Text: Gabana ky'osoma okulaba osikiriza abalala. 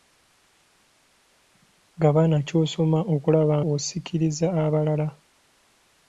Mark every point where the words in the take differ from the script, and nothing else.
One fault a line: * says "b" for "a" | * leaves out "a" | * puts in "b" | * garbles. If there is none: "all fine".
all fine